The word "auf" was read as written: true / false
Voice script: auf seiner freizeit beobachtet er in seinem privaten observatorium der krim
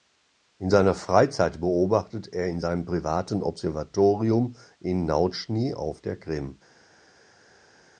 false